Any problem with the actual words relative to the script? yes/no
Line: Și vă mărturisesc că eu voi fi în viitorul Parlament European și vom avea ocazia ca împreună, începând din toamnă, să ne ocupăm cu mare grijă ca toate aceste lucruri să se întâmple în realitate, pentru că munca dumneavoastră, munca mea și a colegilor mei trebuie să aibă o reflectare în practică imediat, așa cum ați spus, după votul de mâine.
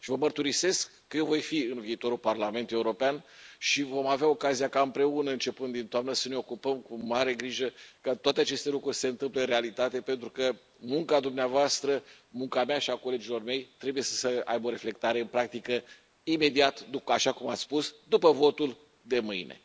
no